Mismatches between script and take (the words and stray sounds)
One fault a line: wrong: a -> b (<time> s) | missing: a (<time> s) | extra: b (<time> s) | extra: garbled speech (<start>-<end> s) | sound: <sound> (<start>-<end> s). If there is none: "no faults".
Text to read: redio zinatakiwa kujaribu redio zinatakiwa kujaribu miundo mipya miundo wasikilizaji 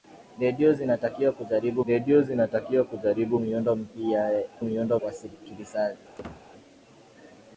sound: squeak (6.2-6.5 s)